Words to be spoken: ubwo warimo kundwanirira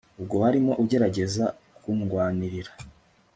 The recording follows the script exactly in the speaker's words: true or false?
false